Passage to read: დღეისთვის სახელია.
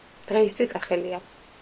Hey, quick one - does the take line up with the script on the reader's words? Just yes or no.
yes